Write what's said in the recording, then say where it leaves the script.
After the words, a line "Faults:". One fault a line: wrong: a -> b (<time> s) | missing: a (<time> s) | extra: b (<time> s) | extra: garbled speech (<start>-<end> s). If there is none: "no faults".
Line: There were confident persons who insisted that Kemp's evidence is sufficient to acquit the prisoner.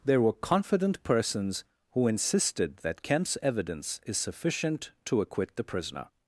There were confident persons who insisted that Kemp's evidence is sufficient to acquit the prisoner.
Faults:
no faults